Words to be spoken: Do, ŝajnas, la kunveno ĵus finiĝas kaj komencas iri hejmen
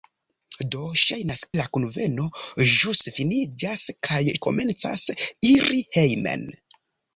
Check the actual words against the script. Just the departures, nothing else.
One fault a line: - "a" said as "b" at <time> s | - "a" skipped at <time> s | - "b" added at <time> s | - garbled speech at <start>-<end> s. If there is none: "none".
none